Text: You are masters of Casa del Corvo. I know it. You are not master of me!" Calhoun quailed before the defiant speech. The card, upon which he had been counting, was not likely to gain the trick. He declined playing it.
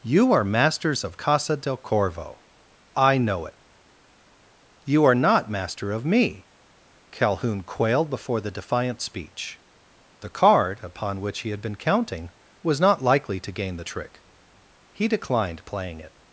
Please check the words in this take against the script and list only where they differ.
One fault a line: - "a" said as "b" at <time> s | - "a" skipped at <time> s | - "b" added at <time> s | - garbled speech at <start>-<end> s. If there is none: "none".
none